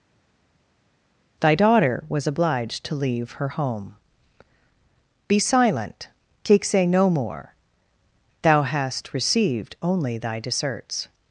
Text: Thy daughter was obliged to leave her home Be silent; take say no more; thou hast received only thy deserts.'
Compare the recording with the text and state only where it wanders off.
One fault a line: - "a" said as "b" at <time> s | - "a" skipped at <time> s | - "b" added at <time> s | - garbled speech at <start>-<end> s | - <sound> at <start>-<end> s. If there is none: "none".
none